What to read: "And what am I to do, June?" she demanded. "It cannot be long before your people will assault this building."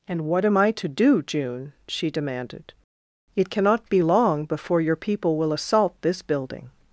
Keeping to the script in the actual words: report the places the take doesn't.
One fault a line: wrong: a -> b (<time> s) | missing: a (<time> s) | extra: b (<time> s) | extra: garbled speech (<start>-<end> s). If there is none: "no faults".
no faults